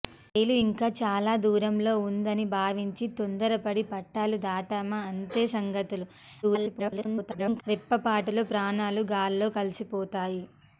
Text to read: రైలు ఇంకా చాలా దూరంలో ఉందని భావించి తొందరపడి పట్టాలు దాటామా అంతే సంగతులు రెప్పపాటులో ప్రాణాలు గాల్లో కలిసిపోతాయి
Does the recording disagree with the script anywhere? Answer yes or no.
yes